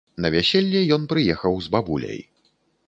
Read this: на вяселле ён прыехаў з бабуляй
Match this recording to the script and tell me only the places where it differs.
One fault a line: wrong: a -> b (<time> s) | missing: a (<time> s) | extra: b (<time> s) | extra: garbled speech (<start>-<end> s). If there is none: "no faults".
no faults